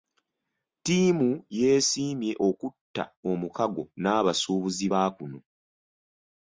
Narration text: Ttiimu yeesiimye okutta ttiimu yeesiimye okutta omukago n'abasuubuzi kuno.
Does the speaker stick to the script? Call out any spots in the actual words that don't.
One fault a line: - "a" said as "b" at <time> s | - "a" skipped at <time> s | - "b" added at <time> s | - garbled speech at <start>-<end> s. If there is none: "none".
- "ttiimu yeesiimye okutta" skipped at 3.0 s
- "ba" added at 4.9 s